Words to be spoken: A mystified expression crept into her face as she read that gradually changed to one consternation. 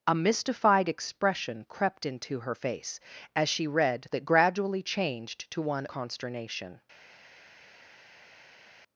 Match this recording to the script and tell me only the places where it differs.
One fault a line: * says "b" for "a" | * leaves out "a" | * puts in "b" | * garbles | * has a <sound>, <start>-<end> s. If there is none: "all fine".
all fine